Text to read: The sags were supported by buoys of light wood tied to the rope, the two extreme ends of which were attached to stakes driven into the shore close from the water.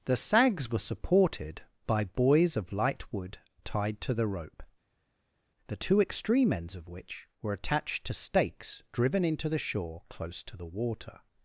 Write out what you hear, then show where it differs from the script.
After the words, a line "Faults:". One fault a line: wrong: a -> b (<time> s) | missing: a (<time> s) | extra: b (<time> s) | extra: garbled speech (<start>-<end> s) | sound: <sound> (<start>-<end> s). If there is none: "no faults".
The sags were supported by buoys of light wood tied to the rope, the two extreme ends of which were attached to stakes driven into the shore close to the water.
Faults:
wrong: from -> to (10.4 s)